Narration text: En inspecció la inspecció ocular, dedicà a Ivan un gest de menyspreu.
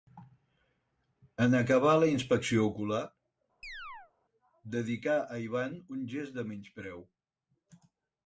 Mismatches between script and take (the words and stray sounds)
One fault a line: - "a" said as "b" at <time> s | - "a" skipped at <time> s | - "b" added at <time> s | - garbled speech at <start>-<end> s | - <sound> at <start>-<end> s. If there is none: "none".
- "inspecció" said as "acabar" at 1.6 s
- chirp at 3.6-4.1 s